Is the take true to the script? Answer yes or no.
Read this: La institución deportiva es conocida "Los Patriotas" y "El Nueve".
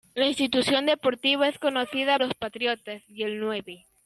yes